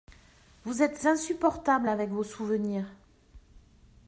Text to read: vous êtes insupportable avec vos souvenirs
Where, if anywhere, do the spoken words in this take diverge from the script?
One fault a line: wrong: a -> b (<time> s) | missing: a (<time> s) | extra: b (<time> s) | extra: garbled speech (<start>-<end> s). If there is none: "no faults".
no faults